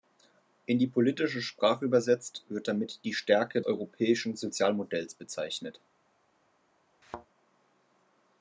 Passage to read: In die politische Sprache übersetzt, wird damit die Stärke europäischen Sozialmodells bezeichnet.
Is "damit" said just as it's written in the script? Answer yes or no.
yes